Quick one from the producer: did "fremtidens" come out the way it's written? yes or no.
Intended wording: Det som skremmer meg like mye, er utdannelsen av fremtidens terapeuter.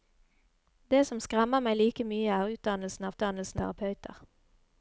no